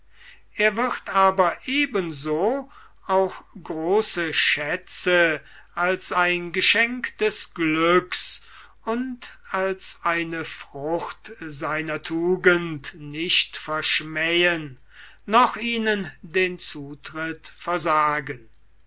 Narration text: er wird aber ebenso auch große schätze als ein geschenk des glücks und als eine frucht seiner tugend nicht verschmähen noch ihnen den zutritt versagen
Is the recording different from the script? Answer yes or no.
no